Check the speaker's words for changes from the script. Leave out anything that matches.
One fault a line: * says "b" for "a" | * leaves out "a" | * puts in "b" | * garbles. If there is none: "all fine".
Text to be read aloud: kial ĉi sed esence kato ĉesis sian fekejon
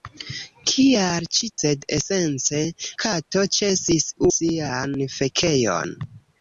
all fine